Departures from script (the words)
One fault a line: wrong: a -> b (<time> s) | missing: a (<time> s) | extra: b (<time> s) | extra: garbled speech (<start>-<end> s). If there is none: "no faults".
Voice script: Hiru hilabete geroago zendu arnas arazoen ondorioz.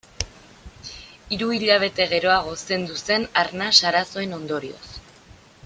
extra: zen (3.0 s)